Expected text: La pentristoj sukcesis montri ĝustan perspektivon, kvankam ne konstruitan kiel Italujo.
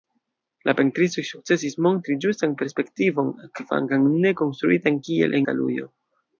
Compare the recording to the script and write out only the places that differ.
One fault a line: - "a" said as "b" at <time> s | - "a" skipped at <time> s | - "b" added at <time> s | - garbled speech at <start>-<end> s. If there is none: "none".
none